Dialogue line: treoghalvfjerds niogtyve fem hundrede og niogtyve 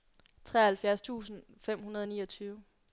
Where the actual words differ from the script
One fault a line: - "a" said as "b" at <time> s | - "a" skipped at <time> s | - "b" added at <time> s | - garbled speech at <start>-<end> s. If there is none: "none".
- "niogtyve" said as "tusind" at 1.0 s